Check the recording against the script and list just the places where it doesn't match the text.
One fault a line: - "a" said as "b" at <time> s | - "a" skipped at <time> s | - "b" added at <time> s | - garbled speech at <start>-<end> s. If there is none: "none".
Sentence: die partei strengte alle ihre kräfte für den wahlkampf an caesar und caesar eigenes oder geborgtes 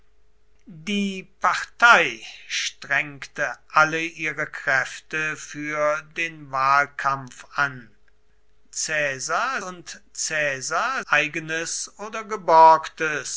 none